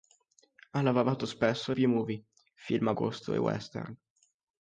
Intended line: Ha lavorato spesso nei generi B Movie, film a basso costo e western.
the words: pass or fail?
fail